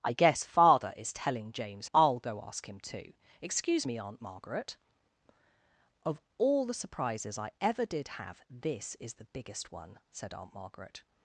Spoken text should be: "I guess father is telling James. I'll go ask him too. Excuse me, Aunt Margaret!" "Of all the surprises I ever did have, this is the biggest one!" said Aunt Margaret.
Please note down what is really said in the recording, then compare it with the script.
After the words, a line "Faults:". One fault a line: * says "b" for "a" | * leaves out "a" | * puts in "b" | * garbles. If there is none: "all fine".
"I guess father is telling James. I'll go ask him too. Excuse me, Aunt Margaret!" "Of all the surprises I ever did have, this is the biggest one!" said Aunt Margaret.
Faults:
all fine